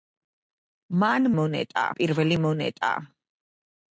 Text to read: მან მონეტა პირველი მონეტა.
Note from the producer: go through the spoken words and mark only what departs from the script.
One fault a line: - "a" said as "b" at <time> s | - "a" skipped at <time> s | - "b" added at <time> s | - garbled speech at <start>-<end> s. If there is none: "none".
none